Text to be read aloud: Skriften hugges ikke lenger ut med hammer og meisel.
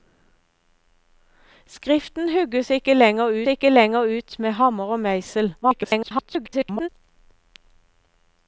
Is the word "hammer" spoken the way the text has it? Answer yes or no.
yes